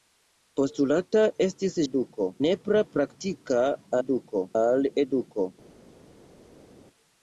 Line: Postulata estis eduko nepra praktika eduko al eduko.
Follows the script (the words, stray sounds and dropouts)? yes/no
yes